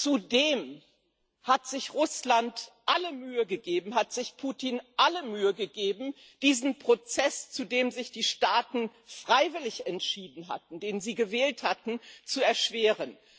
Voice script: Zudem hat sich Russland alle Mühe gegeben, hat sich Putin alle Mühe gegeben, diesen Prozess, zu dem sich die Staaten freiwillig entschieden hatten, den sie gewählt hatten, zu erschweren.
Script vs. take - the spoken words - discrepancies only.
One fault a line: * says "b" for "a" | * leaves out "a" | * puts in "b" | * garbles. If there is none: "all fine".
all fine